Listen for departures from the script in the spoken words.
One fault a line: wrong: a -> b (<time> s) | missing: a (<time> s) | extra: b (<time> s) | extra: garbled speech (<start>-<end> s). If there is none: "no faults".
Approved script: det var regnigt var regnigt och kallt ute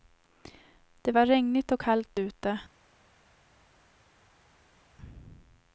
missing: var regnigt (1.7 s)